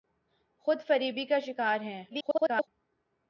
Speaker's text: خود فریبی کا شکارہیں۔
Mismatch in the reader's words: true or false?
true